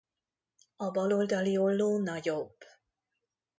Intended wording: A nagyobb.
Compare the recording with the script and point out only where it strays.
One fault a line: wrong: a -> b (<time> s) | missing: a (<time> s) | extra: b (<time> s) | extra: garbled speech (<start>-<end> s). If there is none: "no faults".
extra: bal oldali olló (0.9 s)